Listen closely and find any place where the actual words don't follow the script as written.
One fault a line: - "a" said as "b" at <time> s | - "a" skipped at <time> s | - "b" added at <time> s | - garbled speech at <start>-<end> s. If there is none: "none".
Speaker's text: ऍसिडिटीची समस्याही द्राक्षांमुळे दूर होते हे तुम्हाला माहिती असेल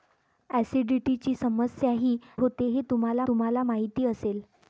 - "द्राक्षांमुळे दूर" skipped at 2.2 s
- "तुम्हाला" added at 3.3 s